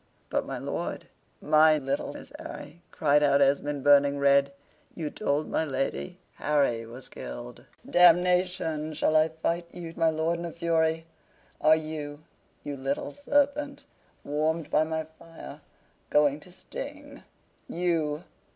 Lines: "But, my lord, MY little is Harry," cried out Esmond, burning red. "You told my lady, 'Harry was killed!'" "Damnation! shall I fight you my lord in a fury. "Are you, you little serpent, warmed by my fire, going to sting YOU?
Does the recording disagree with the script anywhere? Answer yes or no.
no